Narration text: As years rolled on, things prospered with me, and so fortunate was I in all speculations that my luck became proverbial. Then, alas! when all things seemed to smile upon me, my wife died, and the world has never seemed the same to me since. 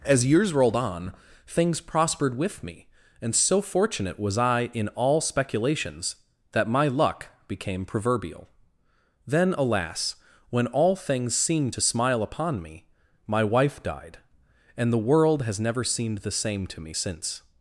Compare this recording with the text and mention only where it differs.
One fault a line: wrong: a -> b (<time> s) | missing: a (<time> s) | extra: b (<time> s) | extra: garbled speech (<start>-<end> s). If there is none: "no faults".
no faults